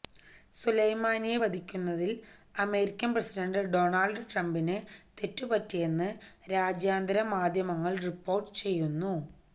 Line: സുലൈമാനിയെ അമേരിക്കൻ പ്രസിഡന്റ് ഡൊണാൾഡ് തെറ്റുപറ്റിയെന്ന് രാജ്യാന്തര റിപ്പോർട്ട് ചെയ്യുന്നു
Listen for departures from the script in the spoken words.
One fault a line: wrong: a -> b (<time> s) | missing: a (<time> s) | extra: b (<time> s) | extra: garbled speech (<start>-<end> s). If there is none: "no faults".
extra: വധിക്കുന്നതിൽ (1.4 s)
extra: ട്രംപിന് (4.3 s)
extra: മാധ്യമങ്ങൾ (7.3 s)